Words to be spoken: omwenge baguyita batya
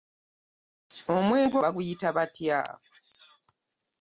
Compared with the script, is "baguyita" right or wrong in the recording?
right